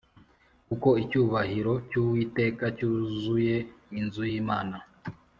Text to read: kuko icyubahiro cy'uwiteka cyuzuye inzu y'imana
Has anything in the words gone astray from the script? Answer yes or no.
no